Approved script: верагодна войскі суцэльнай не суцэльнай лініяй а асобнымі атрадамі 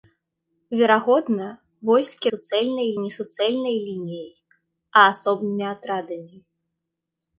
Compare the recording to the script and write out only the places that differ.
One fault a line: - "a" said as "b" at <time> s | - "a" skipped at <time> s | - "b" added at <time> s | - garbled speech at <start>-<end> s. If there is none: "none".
none